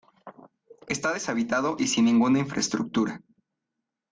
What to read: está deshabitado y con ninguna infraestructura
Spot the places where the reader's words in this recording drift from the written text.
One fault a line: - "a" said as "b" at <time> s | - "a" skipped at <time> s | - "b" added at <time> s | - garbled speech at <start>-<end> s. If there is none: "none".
- "con" said as "sin" at 1.9 s